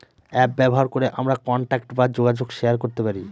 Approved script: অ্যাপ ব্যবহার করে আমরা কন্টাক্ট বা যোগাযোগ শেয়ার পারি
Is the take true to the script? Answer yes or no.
no